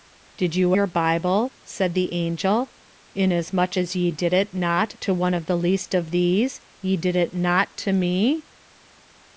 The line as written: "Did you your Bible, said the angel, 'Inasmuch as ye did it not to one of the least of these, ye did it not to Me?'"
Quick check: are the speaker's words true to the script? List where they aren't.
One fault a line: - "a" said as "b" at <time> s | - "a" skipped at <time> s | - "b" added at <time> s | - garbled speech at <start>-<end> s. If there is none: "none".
none